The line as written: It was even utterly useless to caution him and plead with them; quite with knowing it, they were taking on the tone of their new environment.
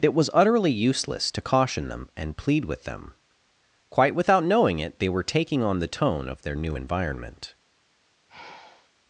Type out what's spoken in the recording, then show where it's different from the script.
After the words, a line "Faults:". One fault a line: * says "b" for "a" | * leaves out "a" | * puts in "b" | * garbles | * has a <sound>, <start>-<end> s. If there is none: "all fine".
It was utterly useless to caution them and plead with them; quite without knowing it, they were taking on the tone of their new environment.
Faults:
* leaves out "even"
* says "them" for "him"
* says "without" for "with"
* has a sigh, 8.3-8.9 s